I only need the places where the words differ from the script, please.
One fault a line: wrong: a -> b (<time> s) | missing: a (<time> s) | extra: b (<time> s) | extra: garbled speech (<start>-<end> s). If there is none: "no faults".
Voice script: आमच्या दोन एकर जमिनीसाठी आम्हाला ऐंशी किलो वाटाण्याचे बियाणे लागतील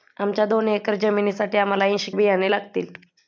missing: किलो वाटाण्याचे (2.1 s)